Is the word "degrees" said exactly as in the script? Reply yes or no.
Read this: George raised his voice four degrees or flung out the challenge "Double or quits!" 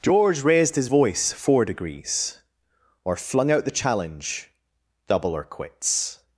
yes